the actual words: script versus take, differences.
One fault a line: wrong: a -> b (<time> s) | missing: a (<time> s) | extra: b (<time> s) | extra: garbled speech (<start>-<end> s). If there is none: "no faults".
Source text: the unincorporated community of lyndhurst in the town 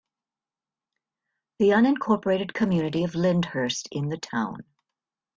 no faults